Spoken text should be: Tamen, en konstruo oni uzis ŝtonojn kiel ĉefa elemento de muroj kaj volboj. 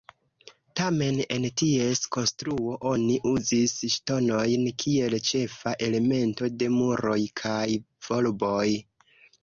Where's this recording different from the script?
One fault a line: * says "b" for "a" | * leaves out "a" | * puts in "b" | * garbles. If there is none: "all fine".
* puts in "ties"